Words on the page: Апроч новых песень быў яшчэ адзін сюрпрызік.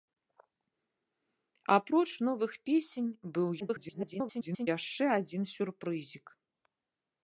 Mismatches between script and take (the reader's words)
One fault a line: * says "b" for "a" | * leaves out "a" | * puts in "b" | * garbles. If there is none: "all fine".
* garbles